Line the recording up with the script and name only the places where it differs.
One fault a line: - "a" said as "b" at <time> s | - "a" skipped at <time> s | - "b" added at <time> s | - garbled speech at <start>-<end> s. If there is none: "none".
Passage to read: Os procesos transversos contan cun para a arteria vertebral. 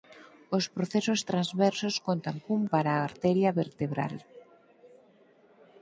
none